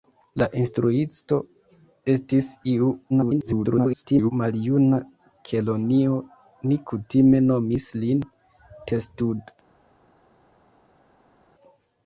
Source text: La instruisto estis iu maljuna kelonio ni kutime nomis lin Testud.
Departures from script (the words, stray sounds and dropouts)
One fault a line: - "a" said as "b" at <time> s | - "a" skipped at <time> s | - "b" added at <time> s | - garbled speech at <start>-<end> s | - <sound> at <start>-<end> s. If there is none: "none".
- garbled speech at 3.1-4.3 s